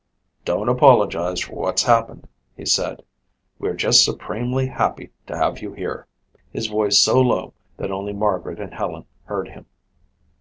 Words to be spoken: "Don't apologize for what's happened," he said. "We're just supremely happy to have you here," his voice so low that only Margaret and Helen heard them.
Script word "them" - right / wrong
wrong